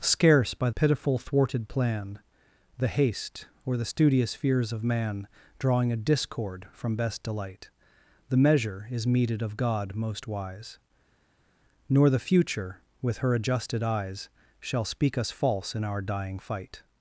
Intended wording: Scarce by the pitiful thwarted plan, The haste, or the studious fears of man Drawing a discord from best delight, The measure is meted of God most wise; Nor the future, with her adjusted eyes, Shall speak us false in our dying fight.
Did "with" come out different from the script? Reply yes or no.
no